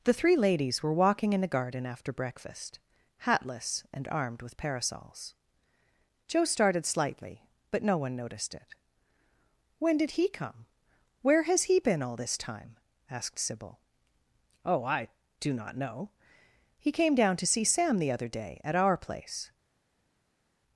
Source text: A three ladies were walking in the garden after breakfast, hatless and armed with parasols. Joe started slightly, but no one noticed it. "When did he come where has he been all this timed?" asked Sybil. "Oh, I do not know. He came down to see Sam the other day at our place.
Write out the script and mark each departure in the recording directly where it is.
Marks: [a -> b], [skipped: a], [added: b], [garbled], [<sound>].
[A -> The] three ladies were walking in the garden after breakfast, hatless and armed with parasols. Joe started slightly, but no one noticed it. "When did he come where has he been all this [timed?" -> time] asked Sybil. "Oh, I do not know. He came down to see Sam the other day at our place.